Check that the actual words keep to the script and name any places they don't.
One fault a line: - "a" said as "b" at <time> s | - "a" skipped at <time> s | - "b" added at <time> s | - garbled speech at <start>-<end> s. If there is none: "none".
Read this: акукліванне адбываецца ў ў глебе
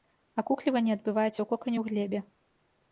- "кокане" added at 1.5 s